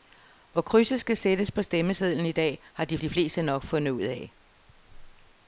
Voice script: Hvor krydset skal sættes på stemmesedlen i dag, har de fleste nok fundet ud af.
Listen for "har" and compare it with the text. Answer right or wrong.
right